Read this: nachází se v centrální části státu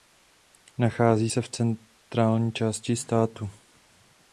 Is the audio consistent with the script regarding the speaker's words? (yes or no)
yes